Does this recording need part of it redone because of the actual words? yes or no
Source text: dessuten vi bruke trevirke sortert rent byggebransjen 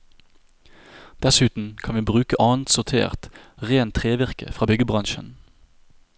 yes